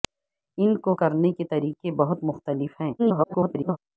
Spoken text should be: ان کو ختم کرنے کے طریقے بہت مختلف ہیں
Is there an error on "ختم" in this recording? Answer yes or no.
yes